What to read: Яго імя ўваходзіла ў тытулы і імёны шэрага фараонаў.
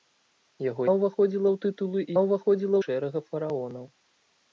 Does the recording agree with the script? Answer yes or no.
no